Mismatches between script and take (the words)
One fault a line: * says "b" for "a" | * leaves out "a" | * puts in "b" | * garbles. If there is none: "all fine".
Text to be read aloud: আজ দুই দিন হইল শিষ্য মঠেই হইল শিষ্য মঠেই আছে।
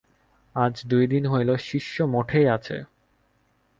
* leaves out "হইল শিষ্য মঠেই"